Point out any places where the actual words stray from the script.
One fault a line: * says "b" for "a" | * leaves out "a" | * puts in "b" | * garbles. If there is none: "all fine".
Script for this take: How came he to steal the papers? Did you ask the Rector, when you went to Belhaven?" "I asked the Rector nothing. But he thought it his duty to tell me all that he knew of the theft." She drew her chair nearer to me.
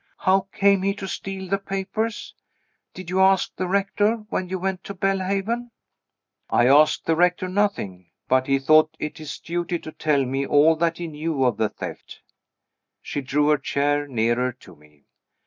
all fine